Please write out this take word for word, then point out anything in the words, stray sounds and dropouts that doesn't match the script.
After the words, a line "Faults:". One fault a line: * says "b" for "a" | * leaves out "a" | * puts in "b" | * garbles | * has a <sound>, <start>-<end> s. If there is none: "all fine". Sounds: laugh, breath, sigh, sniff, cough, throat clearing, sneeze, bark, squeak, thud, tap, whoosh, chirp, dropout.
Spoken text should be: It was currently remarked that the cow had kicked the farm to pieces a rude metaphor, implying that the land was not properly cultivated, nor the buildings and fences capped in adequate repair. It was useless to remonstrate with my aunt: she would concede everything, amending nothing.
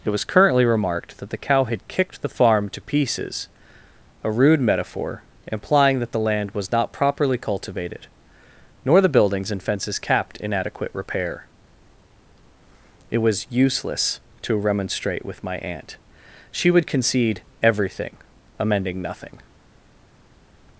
It was currently remarked that the cow had kicked the farm to pieces a rude metaphor, implying that the land was not properly cultivated, nor the buildings and fences capped in adequate repair. It was useless to remonstrate with my aunt: she would concede everything, amending nothing.
Faults:
all fine